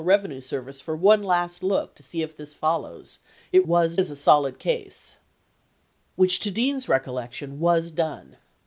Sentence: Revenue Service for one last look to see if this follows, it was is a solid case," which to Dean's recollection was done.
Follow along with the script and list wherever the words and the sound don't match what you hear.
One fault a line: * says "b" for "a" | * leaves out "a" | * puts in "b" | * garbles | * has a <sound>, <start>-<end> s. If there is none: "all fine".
all fine